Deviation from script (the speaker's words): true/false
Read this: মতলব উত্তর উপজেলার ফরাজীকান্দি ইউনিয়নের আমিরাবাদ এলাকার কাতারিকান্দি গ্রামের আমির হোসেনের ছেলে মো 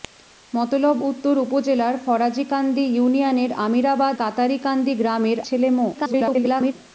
true